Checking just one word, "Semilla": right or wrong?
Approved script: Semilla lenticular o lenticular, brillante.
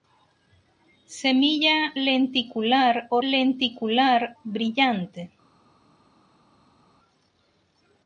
right